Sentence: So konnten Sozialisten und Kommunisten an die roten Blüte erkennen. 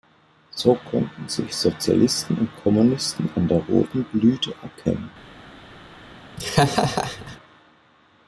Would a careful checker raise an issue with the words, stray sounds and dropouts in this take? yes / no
yes